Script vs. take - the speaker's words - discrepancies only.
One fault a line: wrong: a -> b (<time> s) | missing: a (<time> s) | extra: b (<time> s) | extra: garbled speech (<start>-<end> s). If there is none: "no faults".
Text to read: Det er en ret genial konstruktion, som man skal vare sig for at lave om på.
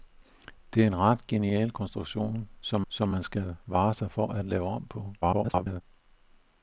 extra: som (2.9 s)
extra: garbled speech (5.2-5.8 s)